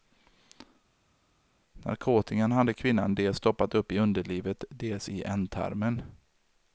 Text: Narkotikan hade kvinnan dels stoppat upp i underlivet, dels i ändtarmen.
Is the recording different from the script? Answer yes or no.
no